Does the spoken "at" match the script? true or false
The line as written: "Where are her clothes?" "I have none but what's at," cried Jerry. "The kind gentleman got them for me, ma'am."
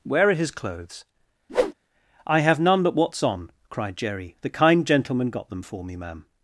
false